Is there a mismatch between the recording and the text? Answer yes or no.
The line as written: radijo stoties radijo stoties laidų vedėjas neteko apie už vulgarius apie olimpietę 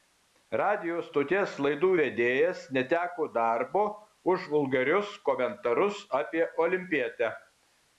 yes